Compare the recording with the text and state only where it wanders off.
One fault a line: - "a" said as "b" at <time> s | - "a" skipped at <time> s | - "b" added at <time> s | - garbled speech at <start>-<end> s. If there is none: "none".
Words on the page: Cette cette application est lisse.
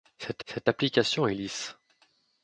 none